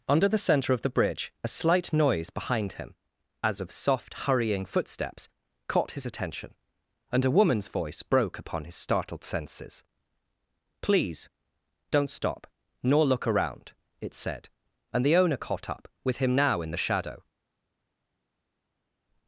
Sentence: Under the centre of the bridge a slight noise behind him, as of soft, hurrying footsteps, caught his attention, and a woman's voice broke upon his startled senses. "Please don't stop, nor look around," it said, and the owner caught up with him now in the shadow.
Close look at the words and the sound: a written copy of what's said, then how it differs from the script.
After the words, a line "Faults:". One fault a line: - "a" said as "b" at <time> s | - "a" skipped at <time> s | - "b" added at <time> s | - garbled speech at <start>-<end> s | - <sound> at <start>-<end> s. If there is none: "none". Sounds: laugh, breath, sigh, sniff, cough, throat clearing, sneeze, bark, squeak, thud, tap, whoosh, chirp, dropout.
Under the centre of the bridge a slight noise behind him, as of soft, hurrying footsteps, caught his attention, and a woman's voice broke upon his startled senses. "Please don't stop, nor look around," it said, and the owner caught up with him now in the shadow.
Faults:
none